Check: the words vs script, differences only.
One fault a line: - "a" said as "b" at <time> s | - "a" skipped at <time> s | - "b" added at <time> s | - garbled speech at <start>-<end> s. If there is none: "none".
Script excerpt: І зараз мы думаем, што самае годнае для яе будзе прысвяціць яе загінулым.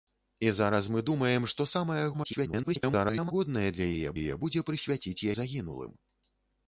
- garbled speech at 2.1-3.3 s
- "яе" added at 4.2 s
- "яе" skipped at 5.3 s